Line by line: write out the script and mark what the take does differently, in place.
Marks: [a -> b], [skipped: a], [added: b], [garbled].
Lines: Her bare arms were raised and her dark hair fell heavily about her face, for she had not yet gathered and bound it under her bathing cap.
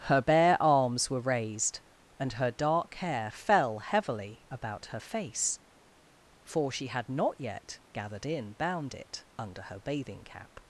Her bare arms were raised and her dark hair fell heavily about her face, for she had not yet gathered [and -> in] bound it under her bathing cap.